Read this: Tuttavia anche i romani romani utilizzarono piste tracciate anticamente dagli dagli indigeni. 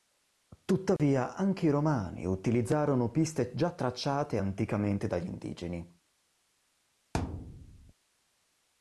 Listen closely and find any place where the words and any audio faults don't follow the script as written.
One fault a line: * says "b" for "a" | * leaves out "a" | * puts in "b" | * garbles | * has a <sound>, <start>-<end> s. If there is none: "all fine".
* has a dropout, 1.0-1.0 s
* leaves out "romani"
* puts in "già"
* leaves out "dagli"
* has a thud, 7.1-7.9 s